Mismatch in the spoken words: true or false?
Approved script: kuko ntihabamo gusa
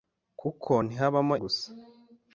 false